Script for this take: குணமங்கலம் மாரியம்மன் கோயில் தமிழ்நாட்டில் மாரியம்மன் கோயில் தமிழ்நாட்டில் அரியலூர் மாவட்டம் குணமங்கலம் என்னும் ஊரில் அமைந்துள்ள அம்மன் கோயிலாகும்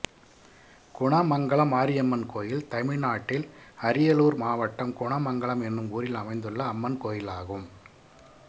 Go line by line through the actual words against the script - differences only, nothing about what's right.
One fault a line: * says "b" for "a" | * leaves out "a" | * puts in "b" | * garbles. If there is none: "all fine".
* leaves out "மாரியம்மன் கோயில் தமிழ்நாட்டில்"